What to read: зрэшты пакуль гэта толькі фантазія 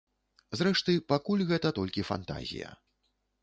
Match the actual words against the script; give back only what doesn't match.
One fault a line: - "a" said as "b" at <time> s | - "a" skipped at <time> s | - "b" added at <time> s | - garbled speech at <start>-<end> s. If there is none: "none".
none